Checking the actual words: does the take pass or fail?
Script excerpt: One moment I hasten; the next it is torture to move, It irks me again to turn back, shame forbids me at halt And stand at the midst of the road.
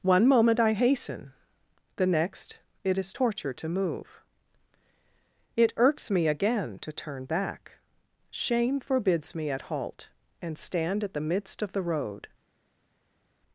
pass